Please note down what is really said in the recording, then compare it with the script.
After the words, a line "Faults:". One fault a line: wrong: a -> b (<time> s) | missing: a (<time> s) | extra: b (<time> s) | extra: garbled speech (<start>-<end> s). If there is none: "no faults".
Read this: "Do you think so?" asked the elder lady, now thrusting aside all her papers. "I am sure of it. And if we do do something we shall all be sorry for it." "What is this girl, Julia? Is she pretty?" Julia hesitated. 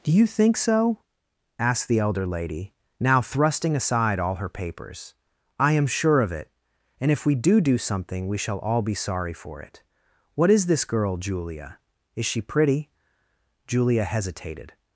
"Do you think so?" asked the elder lady, now thrusting aside all her papers. "I am sure of it. And if we do do something we shall all be sorry for it." "What is this girl, Julia? Is she pretty?" Julia hesitated.
Faults:
no faults